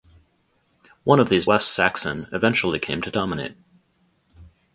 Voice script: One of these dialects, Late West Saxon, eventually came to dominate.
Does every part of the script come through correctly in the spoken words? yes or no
no